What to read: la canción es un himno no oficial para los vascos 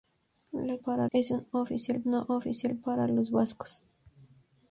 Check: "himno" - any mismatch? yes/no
yes